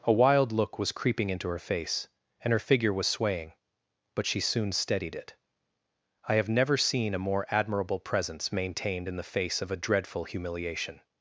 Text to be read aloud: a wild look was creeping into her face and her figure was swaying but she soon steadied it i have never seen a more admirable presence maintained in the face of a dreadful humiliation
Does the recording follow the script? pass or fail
pass